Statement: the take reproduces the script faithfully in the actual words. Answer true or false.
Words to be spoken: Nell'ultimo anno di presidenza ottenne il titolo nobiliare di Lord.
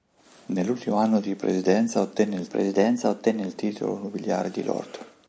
false